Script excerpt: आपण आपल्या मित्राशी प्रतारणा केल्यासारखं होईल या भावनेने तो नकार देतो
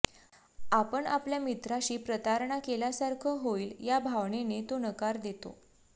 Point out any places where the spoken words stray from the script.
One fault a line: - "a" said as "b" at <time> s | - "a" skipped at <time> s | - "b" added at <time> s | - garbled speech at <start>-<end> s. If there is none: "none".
none